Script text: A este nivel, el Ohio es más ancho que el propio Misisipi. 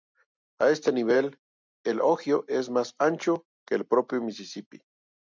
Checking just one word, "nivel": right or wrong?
right